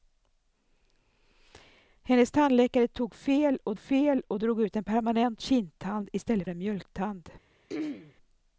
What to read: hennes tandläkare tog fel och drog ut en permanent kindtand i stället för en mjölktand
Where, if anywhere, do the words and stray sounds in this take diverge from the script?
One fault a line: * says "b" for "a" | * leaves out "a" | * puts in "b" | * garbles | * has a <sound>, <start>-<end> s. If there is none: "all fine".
* puts in "fel och"
* leaves out "för"
* has a throat clearing, 7.7-8.1 s